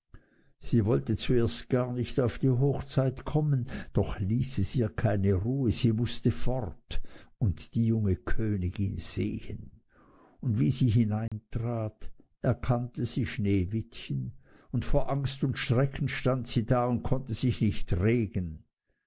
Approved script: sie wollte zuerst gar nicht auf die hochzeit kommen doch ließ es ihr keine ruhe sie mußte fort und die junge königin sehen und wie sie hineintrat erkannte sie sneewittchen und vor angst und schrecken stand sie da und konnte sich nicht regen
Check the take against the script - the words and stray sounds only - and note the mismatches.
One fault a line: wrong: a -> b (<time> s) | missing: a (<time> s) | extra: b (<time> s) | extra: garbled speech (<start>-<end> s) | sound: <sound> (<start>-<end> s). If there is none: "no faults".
sound: dropout (11.3-11.3 s)